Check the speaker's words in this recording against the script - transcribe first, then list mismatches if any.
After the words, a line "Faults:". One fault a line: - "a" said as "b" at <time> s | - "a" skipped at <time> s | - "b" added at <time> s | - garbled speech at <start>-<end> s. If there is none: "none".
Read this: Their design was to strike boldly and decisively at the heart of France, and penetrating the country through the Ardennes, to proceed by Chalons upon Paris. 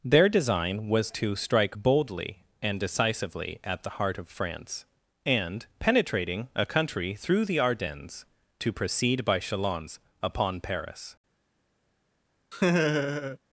Their design was to strike boldly and decisively at the heart of France, and penetrating a country through the Ardennes, to proceed by Chalons upon Paris.
Faults:
- "the" said as "a" at 6.5 s